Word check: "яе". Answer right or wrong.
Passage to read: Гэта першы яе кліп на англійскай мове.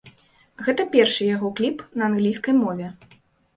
wrong